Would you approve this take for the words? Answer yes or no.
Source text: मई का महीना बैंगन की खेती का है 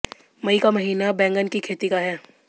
yes